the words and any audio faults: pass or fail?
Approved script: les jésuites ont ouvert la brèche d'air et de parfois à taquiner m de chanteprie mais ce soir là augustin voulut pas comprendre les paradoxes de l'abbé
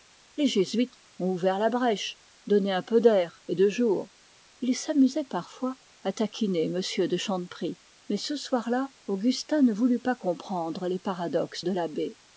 fail